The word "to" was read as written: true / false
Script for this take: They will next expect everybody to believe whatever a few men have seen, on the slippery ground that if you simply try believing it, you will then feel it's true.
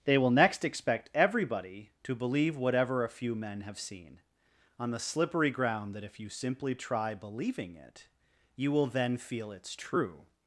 true